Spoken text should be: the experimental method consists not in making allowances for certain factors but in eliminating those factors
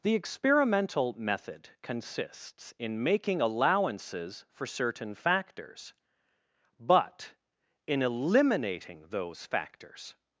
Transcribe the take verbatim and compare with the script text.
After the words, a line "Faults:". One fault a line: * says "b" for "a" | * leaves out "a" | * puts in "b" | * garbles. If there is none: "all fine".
the experimental method consists in making allowances for certain factors but in eliminating those factors
Faults:
* leaves out "not"